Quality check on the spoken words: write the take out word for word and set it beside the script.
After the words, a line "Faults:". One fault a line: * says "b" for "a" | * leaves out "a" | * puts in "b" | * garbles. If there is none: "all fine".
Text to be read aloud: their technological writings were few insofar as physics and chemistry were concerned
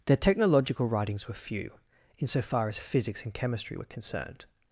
their technological writings were few insofar as physics and chemistry were concerned
Faults:
all fine